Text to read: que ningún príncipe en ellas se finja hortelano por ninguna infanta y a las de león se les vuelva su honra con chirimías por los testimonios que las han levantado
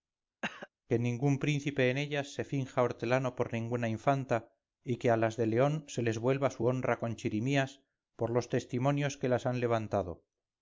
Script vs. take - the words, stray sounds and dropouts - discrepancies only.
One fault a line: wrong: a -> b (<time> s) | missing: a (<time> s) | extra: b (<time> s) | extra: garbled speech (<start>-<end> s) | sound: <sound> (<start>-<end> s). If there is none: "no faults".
sound: cough (0.4-0.7 s)
extra: que (5.0 s)